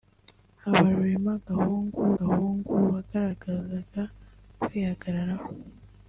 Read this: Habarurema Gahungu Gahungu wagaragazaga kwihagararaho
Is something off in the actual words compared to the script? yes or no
no